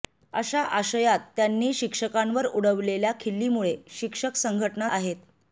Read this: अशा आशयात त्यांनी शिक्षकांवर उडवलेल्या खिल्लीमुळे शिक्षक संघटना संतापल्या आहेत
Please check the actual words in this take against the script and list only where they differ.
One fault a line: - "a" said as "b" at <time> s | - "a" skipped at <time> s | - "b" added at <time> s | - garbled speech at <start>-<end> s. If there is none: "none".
- "संतापल्या" skipped at 4.9 s